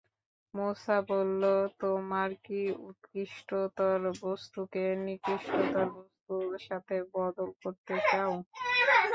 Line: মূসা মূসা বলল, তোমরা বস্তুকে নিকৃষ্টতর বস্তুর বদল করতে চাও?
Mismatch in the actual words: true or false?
true